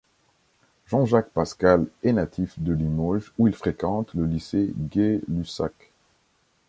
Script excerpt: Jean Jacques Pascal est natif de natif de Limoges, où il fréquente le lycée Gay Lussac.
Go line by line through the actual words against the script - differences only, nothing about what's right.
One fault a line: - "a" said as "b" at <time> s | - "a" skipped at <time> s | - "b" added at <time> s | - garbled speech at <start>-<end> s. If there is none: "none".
- "natif de" skipped at 2.7 s